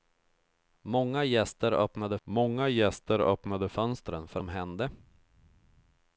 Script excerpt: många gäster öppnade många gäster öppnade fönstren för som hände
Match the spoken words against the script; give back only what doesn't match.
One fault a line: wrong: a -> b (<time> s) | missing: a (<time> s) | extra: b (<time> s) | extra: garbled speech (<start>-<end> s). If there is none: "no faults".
no faults